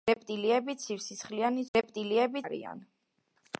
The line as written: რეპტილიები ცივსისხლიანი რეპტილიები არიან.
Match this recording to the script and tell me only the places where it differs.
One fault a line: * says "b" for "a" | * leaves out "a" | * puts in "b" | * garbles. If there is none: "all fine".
all fine